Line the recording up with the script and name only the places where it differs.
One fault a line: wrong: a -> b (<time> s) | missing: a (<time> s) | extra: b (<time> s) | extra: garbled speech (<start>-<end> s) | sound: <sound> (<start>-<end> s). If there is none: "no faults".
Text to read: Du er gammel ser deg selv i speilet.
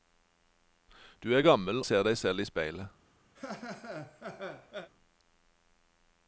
sound: laugh (3.3-4.9 s)